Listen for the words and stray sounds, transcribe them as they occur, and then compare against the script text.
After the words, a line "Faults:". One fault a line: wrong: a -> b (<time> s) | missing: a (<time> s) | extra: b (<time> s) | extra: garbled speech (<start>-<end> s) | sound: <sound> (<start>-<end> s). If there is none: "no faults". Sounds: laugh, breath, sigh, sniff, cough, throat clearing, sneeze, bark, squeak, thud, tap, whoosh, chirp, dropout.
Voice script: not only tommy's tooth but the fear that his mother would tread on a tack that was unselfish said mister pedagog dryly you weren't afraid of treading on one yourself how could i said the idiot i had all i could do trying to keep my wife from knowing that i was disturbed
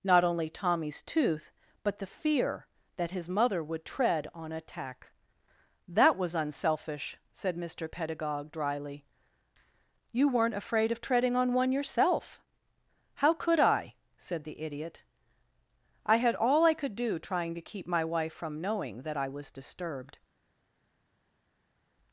not only tommy's tooth but the fear that his mother would tread on a tack that was unselfish said mister pedagog dryly you weren't afraid of treading on one yourself how could i said the idiot i had all i could do trying to keep my wife from knowing that i was disturbed
Faults:
no faults